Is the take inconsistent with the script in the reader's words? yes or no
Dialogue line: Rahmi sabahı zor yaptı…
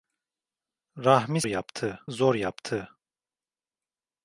yes